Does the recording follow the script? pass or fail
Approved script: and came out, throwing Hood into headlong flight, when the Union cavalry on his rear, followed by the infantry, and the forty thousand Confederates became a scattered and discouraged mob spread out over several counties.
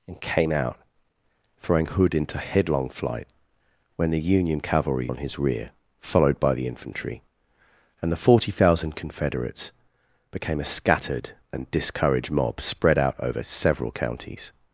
pass